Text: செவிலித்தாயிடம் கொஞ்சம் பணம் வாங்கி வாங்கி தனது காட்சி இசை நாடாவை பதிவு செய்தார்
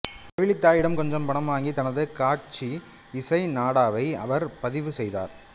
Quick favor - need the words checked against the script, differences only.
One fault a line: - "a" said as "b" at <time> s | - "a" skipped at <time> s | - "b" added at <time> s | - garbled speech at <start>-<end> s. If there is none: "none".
- "வாங்கி" skipped at 1.7 s
- "அவர்" added at 4.2 s